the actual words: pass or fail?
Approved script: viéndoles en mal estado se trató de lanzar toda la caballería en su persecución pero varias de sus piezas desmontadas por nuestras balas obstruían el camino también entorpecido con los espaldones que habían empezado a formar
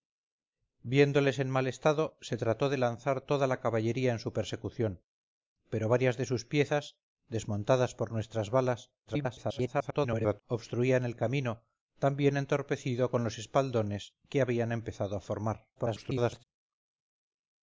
fail